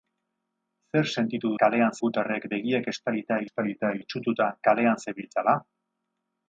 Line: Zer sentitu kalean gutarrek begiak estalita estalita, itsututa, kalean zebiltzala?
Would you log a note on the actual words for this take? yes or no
no